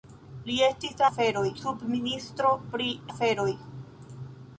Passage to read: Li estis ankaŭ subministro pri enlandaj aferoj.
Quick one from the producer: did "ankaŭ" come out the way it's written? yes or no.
no